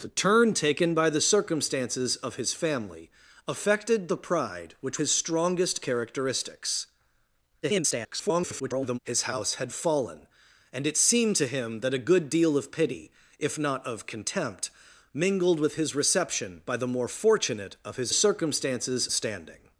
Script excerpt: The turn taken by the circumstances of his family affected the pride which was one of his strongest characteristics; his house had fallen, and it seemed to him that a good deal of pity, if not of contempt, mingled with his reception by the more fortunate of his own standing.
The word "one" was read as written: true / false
false